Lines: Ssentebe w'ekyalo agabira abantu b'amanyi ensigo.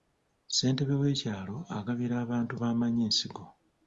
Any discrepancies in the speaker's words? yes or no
no